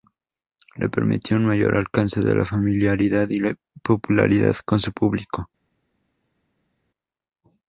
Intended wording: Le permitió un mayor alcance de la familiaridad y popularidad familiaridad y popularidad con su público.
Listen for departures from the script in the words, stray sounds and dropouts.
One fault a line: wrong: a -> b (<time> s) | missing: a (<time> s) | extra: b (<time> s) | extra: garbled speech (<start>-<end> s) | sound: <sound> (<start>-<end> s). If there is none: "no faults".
missing: familiaridad y popularidad (4.5 s)